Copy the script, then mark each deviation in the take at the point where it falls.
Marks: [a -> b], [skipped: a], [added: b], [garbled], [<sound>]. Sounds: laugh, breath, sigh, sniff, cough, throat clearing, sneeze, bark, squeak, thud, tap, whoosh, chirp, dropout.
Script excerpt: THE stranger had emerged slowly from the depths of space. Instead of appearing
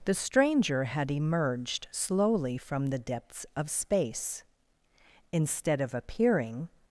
THE stranger had emerged slowly from the depths of space. Instead of appearing